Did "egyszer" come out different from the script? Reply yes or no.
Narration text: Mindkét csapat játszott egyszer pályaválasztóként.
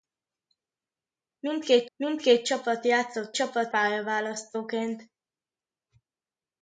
yes